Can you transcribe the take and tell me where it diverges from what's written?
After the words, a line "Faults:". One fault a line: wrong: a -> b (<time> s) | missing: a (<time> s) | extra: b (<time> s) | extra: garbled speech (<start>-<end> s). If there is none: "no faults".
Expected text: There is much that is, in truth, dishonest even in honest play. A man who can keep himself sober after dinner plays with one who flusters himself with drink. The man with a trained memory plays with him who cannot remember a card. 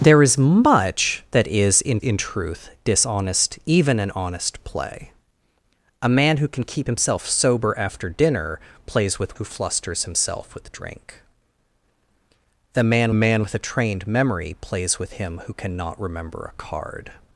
There is much that is, in in truth, dishonest even in honest play. A man who can keep himself sober after dinner plays with who flusters himself with drink. The man man with a trained memory plays with him who cannot remember a card.
Faults:
extra: in (2.0 s)
missing: one (9.4 s)
extra: man (13.1 s)